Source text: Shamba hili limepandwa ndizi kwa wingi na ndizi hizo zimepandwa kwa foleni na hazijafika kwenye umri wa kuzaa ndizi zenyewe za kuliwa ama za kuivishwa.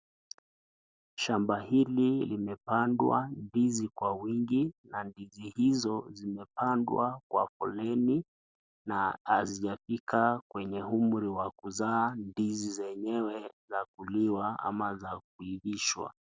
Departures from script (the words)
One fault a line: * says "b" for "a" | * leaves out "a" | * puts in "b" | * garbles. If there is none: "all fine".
all fine